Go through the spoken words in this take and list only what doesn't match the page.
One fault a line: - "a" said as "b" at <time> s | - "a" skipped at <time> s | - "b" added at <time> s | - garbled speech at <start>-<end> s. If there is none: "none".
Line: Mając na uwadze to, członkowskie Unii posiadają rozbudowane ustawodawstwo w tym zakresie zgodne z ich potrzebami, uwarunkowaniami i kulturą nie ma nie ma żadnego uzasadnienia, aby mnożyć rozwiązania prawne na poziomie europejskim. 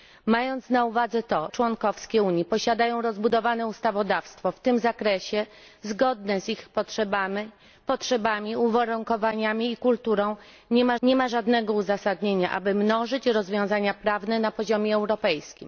none